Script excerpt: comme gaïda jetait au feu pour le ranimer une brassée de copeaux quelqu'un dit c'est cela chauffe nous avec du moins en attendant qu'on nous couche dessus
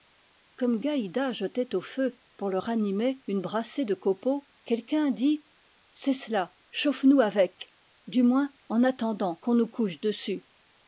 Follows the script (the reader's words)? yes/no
yes